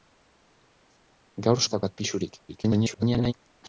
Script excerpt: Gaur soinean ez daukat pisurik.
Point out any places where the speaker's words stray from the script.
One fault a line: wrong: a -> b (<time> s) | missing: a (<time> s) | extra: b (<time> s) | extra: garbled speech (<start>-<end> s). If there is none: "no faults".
missing: soinean (1.6 s)
extra: garbled speech (2.5-3.3 s)